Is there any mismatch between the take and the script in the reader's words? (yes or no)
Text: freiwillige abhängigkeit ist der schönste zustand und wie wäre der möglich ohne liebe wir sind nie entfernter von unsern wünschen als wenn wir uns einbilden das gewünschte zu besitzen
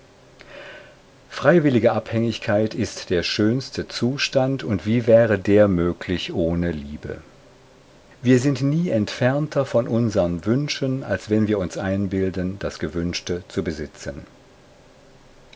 no